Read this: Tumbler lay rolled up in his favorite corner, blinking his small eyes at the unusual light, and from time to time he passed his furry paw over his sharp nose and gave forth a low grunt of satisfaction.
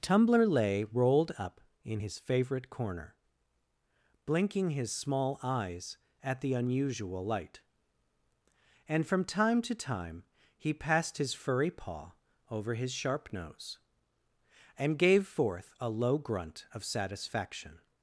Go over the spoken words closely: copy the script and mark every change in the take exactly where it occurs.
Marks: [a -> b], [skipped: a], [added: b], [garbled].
Tumbler lay rolled up in his favorite corner, blinking his small eyes at the unusual light, and from time to time he passed his furry paw over his sharp nose and gave forth a low grunt of satisfaction.